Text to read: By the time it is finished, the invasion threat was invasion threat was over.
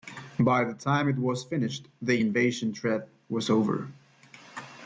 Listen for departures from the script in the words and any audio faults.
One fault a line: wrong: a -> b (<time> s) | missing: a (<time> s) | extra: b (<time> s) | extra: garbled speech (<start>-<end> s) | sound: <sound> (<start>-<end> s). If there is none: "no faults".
wrong: is -> was (1.2 s)
missing: invasion threat was (3.5 s)